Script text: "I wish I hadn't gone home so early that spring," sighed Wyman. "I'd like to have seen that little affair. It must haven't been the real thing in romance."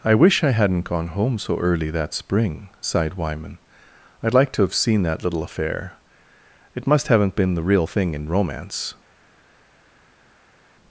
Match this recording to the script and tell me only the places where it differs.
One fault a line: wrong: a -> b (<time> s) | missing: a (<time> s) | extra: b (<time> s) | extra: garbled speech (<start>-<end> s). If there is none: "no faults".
no faults